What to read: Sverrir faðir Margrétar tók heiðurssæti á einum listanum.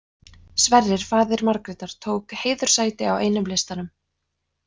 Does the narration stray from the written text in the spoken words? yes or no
no